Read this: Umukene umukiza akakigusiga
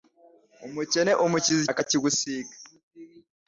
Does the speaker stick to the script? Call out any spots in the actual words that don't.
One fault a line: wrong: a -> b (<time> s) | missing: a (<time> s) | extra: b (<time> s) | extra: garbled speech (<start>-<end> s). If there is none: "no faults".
no faults